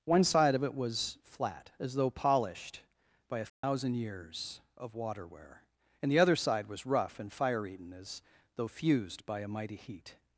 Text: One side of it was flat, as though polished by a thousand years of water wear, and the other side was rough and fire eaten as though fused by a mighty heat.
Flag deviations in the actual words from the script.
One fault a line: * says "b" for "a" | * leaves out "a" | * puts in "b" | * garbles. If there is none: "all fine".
all fine